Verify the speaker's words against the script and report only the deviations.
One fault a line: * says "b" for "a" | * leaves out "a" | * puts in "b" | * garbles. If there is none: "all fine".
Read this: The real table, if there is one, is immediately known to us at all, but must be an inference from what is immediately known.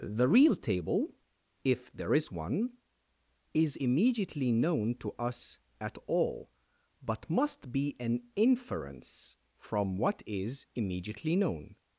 all fine